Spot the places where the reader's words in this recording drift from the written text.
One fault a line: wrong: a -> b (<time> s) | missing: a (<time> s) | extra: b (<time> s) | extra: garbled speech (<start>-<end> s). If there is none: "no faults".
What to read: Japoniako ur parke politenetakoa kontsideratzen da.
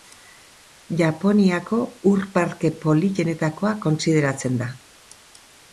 no faults